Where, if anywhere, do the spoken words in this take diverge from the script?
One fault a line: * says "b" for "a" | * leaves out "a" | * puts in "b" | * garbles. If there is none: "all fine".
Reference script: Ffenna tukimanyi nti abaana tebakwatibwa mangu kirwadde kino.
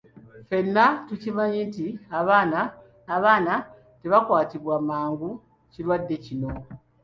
* puts in "abaana"